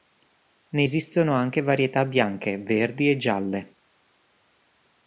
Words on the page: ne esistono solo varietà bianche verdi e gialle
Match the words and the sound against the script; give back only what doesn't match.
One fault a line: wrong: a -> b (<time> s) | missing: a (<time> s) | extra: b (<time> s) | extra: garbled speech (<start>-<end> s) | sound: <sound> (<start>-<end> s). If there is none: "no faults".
wrong: solo -> anche (1.3 s)